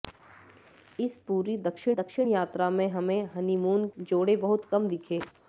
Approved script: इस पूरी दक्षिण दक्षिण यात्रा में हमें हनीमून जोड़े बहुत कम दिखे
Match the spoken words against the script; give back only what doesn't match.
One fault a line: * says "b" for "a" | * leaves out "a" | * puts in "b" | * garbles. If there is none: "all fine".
all fine